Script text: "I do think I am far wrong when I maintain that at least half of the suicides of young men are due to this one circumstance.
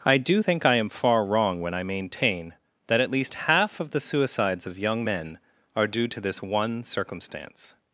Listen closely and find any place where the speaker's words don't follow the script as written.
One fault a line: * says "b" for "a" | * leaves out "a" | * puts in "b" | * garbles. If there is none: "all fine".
all fine